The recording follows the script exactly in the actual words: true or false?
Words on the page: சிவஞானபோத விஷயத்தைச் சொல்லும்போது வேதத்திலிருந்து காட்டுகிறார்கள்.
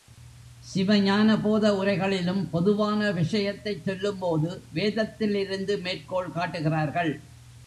false